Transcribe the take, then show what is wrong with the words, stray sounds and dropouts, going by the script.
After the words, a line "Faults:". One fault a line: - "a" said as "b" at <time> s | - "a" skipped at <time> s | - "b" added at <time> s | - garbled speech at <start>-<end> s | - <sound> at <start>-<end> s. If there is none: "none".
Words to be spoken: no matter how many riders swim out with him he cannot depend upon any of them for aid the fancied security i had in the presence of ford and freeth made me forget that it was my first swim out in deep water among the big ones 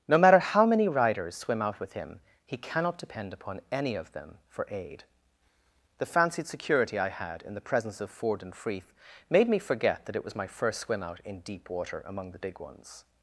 no matter how many riders swim out with him he cannot depend upon any of them for aid the fancied security i had in the presence of ford and freeth made me forget that it was my first swim out in deep water among the big ones
Faults:
none